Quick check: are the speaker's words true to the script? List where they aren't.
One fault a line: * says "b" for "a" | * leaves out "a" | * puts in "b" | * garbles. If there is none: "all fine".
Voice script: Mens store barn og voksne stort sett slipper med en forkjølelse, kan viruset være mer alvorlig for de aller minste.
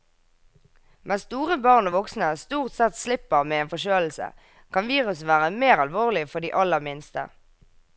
all fine